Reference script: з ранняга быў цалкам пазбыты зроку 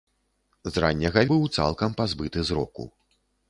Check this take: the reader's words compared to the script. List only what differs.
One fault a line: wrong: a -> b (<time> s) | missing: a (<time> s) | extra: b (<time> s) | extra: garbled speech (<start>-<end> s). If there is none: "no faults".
no faults